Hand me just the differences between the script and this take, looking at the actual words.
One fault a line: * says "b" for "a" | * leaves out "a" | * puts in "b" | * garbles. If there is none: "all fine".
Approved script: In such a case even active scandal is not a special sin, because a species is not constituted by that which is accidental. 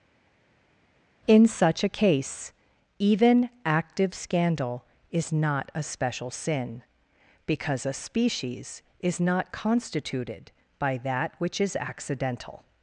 all fine